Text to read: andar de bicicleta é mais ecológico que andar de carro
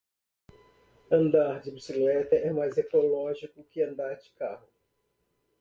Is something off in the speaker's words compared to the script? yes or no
no